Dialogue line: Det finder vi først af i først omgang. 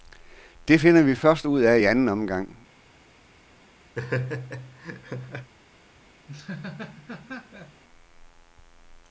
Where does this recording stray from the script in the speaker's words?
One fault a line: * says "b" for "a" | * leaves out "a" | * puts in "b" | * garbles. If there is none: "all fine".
* puts in "ud"
* says "anden" for "først"